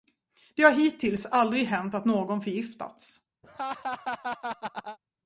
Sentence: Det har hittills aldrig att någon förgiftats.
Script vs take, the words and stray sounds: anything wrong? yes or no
yes